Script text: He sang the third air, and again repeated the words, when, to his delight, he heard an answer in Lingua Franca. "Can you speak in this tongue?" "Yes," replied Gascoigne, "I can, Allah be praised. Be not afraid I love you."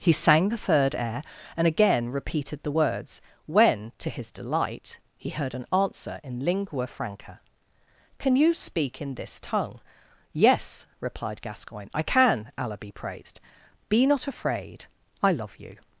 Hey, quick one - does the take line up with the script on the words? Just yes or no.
yes